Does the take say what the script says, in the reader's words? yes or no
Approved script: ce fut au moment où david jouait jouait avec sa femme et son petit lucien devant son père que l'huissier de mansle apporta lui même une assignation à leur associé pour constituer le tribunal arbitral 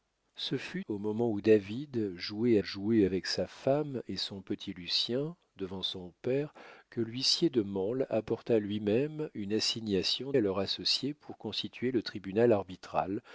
yes